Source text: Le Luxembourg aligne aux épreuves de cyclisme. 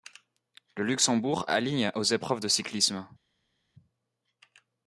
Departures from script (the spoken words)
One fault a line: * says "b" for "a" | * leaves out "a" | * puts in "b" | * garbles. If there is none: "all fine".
all fine